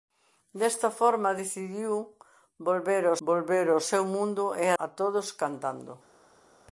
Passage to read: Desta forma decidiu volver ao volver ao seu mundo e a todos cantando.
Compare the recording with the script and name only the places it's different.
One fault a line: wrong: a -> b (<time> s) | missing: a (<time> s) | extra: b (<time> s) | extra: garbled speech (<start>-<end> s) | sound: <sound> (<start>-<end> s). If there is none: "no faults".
no faults